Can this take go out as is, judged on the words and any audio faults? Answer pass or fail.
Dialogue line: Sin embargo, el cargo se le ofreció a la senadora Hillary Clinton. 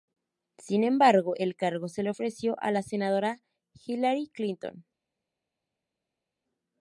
pass